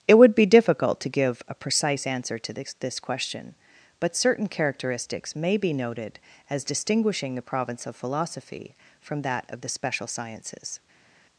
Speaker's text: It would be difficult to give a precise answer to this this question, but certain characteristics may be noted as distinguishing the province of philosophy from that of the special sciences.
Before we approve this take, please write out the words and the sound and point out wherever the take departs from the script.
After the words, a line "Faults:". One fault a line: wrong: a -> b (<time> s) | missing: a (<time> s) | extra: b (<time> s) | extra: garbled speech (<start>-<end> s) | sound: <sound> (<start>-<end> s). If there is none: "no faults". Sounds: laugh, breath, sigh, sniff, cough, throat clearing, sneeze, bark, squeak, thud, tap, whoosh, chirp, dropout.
It would be difficult to give a precise answer to this this question, but certain characteristics may be noted as distinguishing the province of philosophy from that of the special sciences.
Faults:
no faults